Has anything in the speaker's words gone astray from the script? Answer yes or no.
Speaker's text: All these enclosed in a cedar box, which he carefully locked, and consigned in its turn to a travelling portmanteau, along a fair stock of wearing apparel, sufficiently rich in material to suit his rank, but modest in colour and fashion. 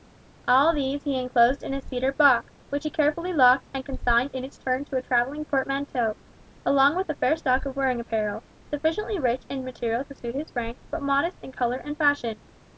yes